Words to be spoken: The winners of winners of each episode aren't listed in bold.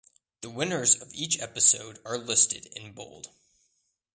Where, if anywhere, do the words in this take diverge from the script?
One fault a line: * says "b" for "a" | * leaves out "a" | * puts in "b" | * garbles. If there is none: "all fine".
* leaves out "winners of"
* says "are" for "aren't"